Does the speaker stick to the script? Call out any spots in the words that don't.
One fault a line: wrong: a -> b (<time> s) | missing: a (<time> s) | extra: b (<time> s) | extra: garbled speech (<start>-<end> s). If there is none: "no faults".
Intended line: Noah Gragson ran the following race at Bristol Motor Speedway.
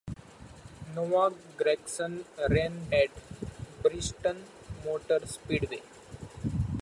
missing: the following race (2.9 s)